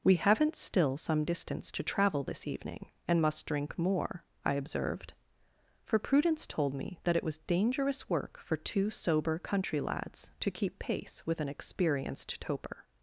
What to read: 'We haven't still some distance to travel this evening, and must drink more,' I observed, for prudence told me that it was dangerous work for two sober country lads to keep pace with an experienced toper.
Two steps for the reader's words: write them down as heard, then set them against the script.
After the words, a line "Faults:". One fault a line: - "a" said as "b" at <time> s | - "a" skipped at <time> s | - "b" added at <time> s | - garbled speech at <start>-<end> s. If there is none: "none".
'We haven't still some distance to travel this evening, and must drink more,' I observed, for prudence told me that it was dangerous work for two sober country lads to keep pace with an experienced toper.
Faults:
none